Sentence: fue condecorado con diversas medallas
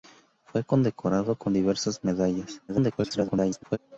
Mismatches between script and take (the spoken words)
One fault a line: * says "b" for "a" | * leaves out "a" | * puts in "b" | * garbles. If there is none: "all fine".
* garbles